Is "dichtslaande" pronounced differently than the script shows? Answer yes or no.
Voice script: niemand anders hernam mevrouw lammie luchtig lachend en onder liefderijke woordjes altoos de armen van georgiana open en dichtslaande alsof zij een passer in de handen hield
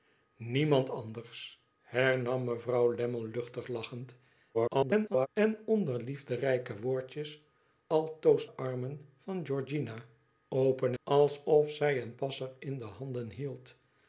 yes